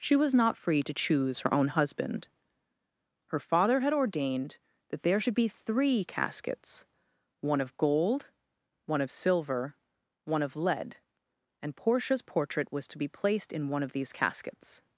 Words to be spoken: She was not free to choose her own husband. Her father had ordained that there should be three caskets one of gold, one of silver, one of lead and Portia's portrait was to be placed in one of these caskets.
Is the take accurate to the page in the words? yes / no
yes